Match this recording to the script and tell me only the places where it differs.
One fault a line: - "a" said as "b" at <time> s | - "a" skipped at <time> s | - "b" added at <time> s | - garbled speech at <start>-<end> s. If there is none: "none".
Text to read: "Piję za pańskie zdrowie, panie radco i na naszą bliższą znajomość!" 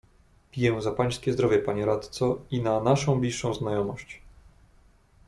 none